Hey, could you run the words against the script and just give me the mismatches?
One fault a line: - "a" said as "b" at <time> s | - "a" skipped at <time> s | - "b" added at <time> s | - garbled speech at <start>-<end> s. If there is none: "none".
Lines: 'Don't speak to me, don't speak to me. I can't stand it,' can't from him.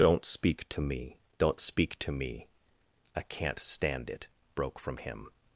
- "can't" said as "broke" at 4.5 s